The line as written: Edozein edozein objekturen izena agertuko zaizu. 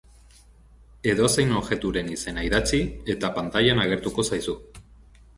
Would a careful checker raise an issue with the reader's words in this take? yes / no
yes